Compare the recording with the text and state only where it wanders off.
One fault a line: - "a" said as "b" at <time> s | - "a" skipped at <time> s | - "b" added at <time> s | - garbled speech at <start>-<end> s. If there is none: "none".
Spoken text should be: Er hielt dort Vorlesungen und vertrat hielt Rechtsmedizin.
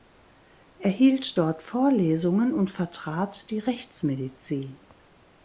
- "hielt" said as "die" at 3.5 s